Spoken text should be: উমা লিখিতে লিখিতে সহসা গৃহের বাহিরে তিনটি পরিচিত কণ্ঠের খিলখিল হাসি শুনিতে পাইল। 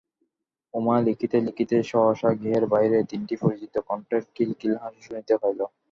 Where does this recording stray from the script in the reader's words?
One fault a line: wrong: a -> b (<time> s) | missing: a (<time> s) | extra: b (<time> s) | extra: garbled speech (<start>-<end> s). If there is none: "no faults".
no faults